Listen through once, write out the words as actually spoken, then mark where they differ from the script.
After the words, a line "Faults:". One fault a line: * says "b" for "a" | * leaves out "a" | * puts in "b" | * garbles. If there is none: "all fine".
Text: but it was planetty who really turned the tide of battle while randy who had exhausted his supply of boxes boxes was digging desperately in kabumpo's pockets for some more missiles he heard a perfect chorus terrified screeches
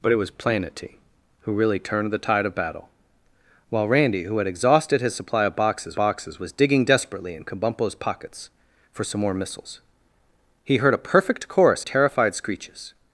but it was planetty who really turned the tide of battle while randy who had exhausted his supply of boxes boxes was digging desperately in kabumpo's pockets for some more missiles he heard a perfect chorus terrified screeches
Faults:
all fine